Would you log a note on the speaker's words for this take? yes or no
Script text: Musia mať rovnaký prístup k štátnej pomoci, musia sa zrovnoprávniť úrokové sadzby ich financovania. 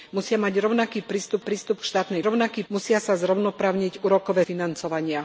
yes